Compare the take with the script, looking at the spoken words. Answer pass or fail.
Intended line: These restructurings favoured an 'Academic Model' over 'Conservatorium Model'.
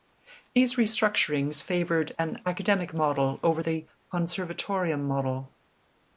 fail